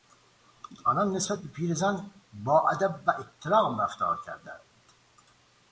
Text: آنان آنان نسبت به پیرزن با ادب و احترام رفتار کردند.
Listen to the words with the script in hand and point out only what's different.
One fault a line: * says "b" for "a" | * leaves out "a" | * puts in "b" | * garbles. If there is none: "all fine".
* leaves out "آنان"